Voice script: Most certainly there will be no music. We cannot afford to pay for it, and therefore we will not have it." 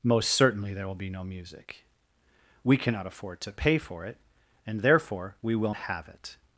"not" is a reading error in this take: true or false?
true